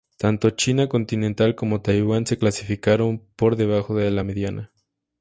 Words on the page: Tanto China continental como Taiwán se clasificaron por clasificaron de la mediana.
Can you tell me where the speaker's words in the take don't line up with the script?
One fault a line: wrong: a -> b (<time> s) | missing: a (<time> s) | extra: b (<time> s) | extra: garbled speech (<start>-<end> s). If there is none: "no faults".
wrong: clasificaron -> debajo (3.6 s)